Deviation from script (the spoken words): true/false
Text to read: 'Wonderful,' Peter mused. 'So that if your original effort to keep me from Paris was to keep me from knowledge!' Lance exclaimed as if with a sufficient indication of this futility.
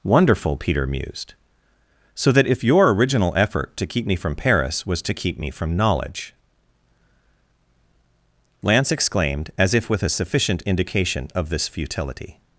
false